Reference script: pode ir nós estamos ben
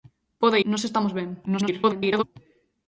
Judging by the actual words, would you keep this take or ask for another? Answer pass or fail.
fail